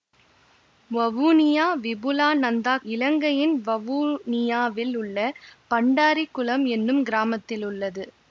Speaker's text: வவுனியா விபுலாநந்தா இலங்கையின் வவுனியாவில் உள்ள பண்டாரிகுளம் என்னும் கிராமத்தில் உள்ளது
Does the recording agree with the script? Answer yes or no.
yes